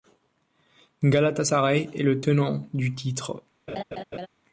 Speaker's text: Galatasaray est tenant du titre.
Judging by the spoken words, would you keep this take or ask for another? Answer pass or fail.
fail